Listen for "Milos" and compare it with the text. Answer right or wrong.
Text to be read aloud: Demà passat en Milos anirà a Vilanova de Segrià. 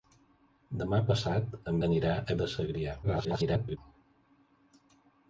wrong